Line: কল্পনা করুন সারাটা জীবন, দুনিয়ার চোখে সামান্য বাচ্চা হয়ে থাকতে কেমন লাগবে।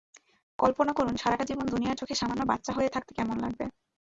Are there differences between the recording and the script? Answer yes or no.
no